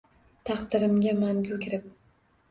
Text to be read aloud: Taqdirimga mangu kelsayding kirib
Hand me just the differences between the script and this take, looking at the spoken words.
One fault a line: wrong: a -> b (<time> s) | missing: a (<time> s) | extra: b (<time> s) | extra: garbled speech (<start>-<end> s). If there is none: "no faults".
missing: kelsayding (1.6 s)